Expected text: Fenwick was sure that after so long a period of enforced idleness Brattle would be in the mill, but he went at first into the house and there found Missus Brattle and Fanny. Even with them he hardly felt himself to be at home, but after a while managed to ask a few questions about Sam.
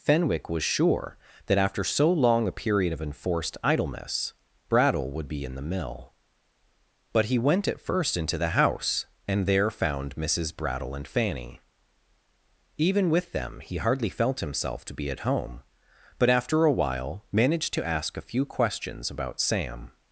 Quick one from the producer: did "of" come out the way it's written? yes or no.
yes